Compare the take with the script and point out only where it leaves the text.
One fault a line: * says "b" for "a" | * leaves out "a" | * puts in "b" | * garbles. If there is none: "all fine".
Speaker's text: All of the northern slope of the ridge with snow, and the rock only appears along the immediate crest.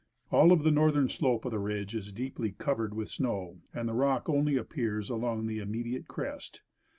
* puts in "is deeply covered"